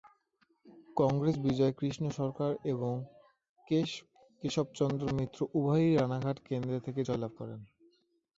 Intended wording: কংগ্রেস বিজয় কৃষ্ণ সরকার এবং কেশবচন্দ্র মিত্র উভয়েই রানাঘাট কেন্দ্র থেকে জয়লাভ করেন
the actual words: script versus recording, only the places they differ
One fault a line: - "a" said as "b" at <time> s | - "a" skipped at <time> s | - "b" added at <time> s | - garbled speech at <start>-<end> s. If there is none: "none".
none